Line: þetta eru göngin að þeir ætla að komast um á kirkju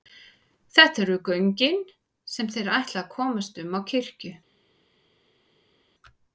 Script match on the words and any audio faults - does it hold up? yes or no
no